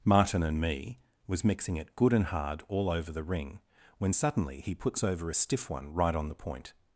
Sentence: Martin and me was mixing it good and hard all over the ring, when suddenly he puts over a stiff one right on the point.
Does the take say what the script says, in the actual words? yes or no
yes